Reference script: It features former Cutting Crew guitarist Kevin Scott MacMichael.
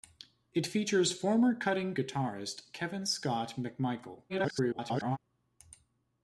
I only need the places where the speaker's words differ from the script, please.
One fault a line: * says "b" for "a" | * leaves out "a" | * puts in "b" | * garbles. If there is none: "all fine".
* leaves out "Crew"
* garbles